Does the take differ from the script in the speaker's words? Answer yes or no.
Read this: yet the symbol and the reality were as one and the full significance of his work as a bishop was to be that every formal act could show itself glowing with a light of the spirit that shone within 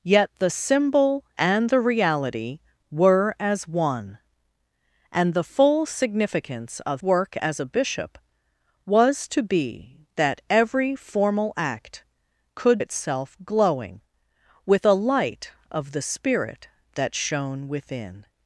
yes